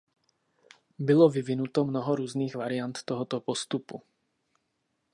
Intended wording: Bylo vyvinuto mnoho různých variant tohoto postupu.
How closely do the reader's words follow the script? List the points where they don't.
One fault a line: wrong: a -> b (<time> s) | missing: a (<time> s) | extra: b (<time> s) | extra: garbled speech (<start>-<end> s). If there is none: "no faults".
no faults